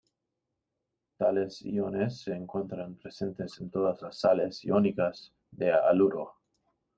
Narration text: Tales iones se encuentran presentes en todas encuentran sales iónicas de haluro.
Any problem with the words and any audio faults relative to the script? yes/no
yes